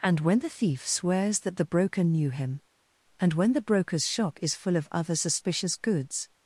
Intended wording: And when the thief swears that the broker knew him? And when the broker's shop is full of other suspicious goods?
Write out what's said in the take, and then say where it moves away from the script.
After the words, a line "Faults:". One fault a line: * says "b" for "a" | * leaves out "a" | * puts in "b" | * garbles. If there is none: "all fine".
And when the thief swears that the broker knew him? And when the broker's shop is full of other suspicious goods?
Faults:
all fine